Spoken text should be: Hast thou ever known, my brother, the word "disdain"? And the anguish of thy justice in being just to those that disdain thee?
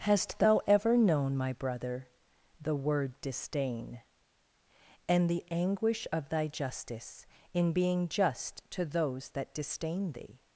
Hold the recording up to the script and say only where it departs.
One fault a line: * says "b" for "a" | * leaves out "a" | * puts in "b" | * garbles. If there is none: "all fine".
all fine